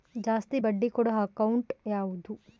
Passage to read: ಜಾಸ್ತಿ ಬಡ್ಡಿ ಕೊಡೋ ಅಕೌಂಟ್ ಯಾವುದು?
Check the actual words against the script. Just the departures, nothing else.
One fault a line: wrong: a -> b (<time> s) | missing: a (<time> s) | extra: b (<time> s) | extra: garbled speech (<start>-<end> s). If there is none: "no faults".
no faults